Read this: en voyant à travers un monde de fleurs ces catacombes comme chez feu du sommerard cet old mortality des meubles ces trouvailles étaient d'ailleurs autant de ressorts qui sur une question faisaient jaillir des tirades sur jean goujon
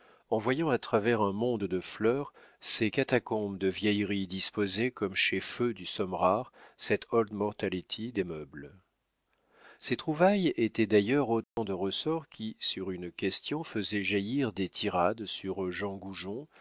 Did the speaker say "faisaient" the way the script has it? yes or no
yes